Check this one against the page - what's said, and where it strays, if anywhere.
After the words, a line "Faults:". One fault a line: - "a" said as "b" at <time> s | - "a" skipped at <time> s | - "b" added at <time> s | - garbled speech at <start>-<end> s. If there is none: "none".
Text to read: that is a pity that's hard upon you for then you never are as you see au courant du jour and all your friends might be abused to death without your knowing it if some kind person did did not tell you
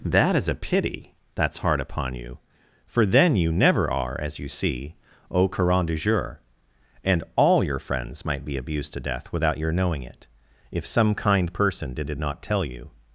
that is a pity that's hard upon you for then you never are as you see au courant du jour and all your friends might be abused to death without your knowing it if some kind person did did not tell you
Faults:
none